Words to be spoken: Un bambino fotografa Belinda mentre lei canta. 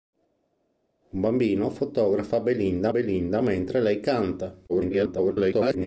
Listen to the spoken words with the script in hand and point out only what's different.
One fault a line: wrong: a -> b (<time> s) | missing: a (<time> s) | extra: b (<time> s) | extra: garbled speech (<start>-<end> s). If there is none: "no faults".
extra: Belinda (2.9 s)
extra: garbled speech (4.7-5.9 s)